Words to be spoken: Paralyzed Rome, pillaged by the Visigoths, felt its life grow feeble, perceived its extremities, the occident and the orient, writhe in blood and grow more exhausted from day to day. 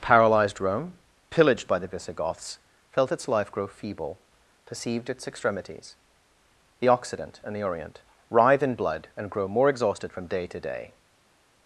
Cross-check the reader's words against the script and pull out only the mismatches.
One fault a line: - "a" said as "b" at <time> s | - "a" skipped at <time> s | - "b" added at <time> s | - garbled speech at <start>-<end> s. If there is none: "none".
none